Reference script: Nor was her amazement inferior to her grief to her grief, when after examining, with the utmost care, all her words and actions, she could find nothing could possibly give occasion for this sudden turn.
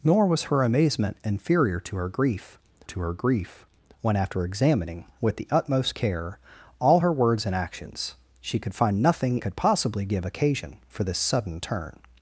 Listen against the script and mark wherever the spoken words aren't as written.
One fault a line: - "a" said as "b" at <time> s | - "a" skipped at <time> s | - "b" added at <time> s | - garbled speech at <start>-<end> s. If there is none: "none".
none